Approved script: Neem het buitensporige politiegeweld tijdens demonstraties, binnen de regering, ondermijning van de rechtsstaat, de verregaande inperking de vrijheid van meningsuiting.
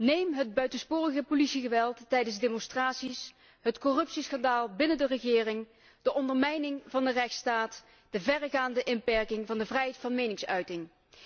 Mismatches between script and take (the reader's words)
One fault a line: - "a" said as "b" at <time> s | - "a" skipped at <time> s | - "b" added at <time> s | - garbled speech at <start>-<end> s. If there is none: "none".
- "het corruptieschandaal" added at 3.6 s
- "de" added at 6.0 s
- "van" added at 9.4 s